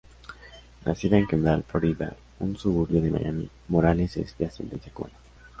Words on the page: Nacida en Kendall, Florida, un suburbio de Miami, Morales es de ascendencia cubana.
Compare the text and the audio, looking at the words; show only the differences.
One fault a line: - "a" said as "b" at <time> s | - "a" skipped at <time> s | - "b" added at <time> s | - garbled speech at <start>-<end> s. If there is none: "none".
none